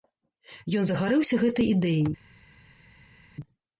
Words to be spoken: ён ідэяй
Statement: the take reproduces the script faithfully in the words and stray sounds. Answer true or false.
false